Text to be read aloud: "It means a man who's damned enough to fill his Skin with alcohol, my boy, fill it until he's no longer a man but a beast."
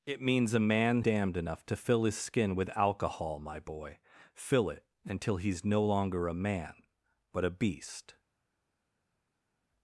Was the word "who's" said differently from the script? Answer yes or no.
yes